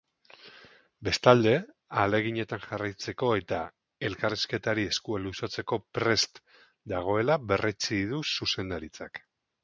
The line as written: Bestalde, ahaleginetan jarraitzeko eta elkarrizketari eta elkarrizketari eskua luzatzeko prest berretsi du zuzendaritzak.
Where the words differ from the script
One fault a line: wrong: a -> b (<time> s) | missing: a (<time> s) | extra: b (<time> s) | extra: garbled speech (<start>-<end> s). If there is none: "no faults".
missing: eta elkarrizketari (4.8 s)
extra: dagoela (6.9 s)